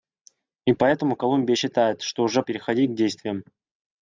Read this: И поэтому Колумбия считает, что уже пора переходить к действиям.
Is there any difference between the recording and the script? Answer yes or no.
yes